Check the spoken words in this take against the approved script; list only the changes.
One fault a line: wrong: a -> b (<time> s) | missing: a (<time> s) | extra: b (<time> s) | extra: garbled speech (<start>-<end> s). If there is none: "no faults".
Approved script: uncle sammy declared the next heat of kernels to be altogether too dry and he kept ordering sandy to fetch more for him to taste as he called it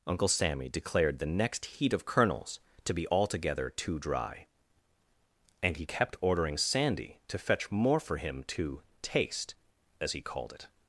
no faults